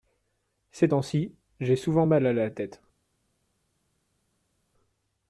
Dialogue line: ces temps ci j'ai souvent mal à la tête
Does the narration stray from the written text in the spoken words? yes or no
no